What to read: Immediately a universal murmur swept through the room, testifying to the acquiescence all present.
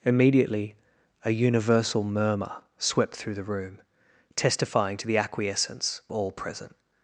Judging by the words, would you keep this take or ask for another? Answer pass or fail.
pass